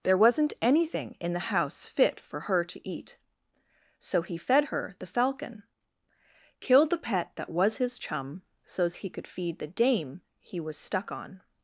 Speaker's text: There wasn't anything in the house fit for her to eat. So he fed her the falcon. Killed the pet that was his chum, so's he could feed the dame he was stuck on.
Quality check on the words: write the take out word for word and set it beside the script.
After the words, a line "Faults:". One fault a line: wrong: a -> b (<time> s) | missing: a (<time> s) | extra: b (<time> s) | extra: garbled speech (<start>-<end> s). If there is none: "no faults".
There wasn't anything in the house fit for her to eat. So he fed her the falcon. Killed the pet that was his chum, so's he could feed the dame he was stuck on.
Faults:
no faults